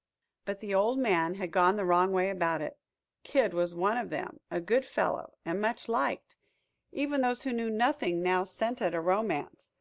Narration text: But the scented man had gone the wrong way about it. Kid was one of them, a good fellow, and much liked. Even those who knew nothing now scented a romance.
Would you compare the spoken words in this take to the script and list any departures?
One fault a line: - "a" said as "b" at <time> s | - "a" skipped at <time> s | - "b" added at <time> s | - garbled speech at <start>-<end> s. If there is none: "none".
- "scented" said as "old" at 0.7 s